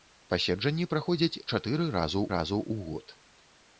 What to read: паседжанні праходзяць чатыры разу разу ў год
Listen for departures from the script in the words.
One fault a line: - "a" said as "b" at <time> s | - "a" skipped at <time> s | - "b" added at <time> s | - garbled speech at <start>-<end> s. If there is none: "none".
none